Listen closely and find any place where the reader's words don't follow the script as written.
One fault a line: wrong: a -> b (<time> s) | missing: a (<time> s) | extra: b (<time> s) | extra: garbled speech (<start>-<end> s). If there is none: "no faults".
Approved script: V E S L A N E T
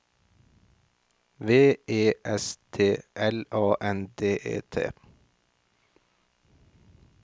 extra: T (2.7 s)
extra: D (4.2 s)